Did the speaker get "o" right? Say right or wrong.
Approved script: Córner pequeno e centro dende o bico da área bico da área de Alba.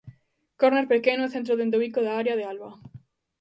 right